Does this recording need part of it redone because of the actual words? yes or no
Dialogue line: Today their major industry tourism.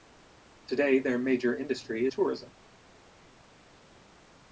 no